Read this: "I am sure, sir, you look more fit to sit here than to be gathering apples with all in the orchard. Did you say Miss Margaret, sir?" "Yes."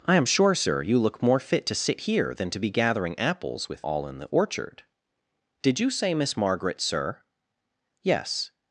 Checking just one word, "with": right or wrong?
right